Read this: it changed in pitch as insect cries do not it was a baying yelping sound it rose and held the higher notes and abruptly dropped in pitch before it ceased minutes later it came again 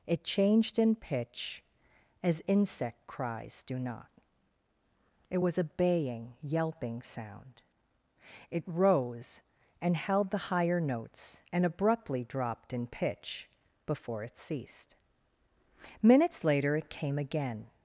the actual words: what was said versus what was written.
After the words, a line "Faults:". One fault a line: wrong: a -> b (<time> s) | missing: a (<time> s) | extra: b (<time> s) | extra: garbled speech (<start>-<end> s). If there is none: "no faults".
it changed in pitch as insect cries do not it was a baying yelping sound it rose and held the higher notes and abruptly dropped in pitch before it ceased minutes later it came again
Faults:
no faults